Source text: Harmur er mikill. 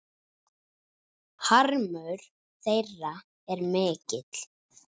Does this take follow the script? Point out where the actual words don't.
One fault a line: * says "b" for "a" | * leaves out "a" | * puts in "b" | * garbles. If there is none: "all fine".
* puts in "þeirra"